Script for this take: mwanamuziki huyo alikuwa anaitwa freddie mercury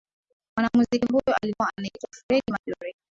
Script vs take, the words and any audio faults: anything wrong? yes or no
no